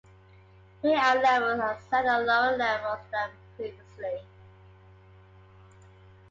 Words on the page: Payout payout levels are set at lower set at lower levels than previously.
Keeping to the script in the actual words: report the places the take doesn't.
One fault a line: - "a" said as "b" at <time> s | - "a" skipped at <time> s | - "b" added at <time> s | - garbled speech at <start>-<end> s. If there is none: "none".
- "payout" skipped at 1.2 s
- "set at lower" skipped at 2.6 s